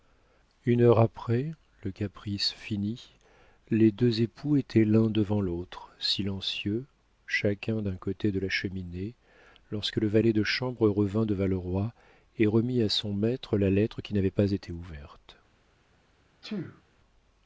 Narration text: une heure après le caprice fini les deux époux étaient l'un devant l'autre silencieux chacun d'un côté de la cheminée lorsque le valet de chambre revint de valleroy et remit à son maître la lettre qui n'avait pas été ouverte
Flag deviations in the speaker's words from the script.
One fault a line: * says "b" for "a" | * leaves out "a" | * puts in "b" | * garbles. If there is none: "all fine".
all fine